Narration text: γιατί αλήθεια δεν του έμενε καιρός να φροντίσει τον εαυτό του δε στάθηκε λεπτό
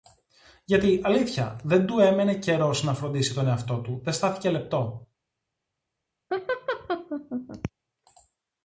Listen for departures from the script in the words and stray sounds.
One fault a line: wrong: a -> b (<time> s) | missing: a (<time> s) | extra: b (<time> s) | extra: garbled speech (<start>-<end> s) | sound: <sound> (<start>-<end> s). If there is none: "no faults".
sound: laugh (6.3-7.7 s)